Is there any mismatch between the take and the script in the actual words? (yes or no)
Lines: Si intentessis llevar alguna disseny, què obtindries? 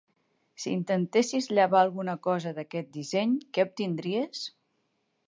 yes